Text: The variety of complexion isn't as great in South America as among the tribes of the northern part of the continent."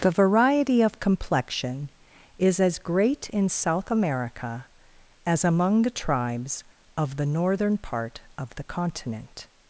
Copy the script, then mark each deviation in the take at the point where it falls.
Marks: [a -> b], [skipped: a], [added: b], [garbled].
The variety of complexion [isn't -> is] as great in South America as among the tribes of the northern part of the continent."